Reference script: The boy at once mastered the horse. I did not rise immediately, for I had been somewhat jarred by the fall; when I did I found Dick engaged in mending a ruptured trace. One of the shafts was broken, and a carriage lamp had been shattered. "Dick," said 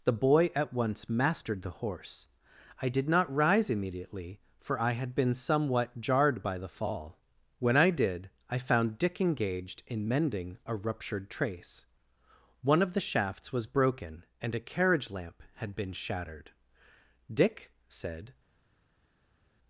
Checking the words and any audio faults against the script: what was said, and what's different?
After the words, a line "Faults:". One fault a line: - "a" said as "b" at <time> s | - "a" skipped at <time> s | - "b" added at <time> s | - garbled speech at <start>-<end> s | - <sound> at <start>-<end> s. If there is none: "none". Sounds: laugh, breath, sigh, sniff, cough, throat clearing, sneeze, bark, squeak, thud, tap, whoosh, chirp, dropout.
The boy at once mastered the horse. I did not rise immediately, for I had been somewhat jarred by the fall; when I did I found Dick engaged in mending a ruptured trace. One of the shafts was broken, and a carriage lamp had been shattered. "Dick," said
Faults:
none